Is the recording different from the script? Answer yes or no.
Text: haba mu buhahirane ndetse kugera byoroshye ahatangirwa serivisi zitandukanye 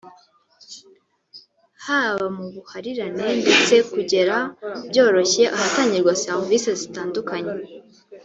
no